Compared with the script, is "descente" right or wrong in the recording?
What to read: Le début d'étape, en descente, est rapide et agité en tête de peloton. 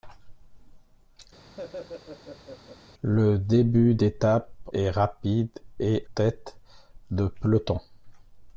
wrong